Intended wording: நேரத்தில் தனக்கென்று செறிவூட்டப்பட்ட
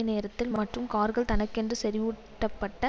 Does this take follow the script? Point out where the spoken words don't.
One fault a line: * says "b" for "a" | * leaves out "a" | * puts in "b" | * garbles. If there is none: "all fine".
* puts in "மற்றும் கார்கள்"